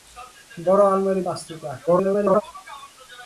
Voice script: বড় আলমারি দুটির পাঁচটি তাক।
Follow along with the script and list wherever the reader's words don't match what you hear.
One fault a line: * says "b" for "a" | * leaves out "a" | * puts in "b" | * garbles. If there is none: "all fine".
* leaves out "দুটির"
* garbles